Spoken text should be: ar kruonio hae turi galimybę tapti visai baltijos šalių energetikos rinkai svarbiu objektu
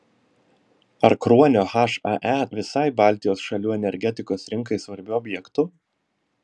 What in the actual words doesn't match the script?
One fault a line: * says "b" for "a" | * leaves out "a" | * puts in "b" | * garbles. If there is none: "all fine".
* leaves out "turi galimybę tapti"